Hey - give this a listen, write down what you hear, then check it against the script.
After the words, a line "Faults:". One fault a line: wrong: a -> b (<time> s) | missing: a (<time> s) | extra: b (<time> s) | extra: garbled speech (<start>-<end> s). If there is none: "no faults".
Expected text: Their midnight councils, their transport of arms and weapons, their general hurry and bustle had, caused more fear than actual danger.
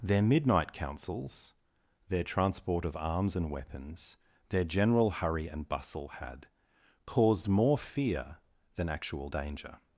Their midnight councils, their transport of arms and weapons, their general hurry and bustle had, caused more fear than actual danger.
Faults:
no faults